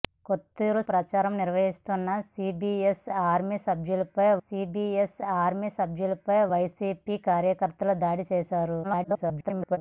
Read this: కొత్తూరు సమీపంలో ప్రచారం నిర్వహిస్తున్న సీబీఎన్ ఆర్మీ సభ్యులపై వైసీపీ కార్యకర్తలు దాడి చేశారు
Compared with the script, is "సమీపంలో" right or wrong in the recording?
wrong